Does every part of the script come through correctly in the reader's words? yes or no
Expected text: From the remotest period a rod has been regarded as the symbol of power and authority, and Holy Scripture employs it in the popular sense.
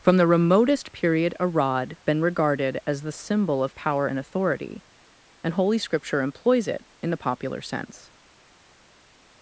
no